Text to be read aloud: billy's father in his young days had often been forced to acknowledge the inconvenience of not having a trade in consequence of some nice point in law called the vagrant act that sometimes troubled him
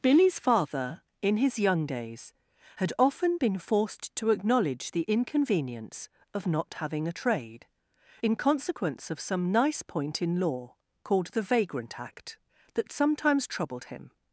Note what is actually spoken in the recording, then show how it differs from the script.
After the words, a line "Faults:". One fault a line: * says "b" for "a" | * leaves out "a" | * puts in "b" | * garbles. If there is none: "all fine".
billy's father in his young days had often been forced to acknowledge the inconvenience of not having a trade in consequence of some nice point in law called the vagrant act that sometimes troubled him
Faults:
all fine